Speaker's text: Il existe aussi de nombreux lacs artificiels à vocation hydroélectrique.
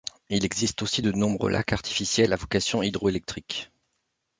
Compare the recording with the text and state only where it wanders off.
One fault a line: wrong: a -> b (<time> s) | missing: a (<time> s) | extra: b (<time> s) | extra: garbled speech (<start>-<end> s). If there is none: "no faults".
no faults